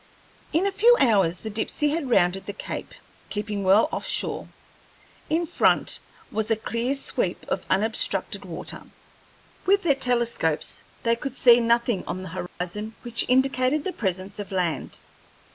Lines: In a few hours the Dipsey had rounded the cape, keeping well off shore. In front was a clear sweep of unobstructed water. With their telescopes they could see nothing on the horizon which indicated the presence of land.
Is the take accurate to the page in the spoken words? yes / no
yes